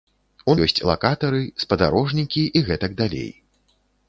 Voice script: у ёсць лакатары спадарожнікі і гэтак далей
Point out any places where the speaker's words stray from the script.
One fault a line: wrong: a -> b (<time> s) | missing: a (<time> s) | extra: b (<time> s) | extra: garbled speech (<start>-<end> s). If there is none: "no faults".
no faults